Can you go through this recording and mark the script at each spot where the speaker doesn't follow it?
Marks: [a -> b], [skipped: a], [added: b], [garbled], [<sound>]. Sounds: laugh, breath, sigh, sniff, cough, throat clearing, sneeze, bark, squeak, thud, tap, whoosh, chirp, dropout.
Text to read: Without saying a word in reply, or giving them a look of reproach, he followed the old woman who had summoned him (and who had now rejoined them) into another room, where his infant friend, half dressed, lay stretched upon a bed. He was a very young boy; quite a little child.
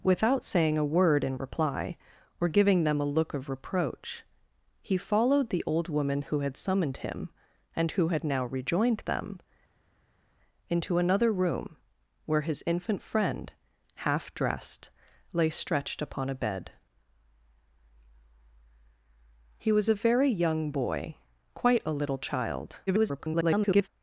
Without saying a word in reply, or giving them a look of reproach, he followed the old woman who had summoned him (and who had now rejoined them) into another room, where his infant friend, half dressed, lay stretched upon a bed. He was a very young boy; quite a little child. [garbled]